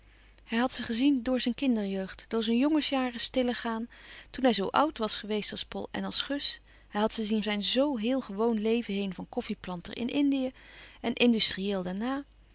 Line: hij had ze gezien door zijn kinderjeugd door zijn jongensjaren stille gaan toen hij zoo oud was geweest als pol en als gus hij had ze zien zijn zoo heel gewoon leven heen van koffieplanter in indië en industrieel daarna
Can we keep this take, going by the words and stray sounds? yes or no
yes